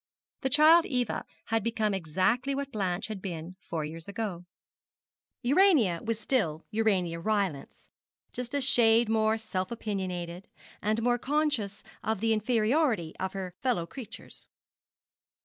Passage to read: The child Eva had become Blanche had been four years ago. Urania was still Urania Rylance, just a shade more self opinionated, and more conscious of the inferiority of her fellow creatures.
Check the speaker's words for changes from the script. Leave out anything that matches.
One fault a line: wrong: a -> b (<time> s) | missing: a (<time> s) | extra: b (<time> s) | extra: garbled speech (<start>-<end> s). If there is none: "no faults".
extra: exactly what (1.9 s)